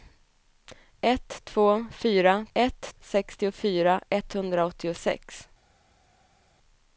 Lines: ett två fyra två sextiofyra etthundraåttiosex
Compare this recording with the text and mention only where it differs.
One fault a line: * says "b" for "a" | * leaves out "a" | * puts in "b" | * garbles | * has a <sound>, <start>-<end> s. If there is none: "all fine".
* says "ett" for "två"